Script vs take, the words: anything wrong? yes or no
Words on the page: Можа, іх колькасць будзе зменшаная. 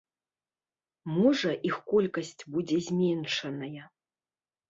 no